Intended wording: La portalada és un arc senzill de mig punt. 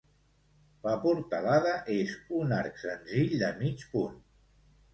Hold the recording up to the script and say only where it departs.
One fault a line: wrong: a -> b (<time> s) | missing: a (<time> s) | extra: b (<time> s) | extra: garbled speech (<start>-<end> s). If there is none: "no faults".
no faults